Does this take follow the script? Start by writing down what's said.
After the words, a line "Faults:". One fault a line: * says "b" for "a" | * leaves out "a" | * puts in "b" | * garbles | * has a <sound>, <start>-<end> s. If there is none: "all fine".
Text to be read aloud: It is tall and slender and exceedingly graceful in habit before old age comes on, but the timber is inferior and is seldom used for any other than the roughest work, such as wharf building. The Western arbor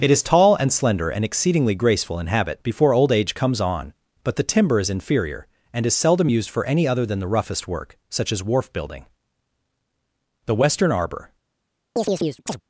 It is tall and slender and exceedingly graceful in habit before old age comes on, but the timber is inferior and is seldom used for any other than the roughest work, such as wharf building. The Western arbor
Faults:
* has a chirp, 12.0-12.6 s